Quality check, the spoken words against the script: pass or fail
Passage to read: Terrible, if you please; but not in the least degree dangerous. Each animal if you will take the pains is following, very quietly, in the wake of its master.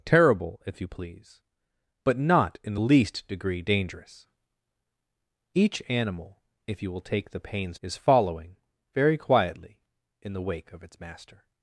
pass